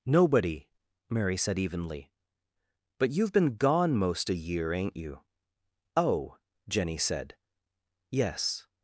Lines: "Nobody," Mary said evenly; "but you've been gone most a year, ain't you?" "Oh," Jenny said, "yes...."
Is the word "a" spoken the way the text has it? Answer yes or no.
yes